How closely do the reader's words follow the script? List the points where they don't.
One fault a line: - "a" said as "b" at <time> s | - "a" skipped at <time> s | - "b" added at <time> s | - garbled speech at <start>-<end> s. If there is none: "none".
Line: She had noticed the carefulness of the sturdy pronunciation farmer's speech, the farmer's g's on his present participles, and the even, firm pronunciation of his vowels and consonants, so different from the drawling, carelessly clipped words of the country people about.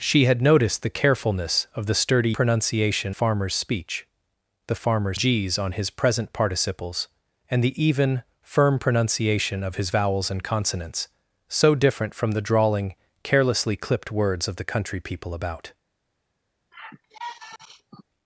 none